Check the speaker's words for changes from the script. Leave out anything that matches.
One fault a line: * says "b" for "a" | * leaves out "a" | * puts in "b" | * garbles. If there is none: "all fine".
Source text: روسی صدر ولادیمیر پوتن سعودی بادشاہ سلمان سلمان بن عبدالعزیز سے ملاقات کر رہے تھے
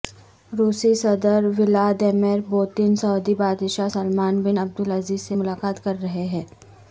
* leaves out "سلمان"
* says "ہیں" for "تھے"